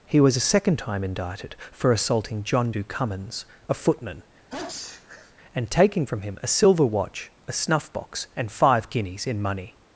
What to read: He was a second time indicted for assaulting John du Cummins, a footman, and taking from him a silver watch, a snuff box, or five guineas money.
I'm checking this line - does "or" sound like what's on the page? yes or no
no